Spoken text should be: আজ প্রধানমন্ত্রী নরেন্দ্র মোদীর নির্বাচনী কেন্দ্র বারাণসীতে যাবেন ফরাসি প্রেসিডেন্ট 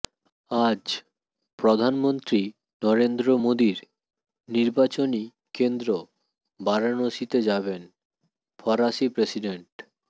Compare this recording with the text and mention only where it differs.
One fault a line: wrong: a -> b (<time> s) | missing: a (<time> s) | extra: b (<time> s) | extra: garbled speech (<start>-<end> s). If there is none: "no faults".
no faults